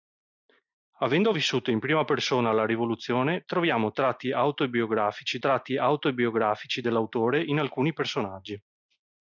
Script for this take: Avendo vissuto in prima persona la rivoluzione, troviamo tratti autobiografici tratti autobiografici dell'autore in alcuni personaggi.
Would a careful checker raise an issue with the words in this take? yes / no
no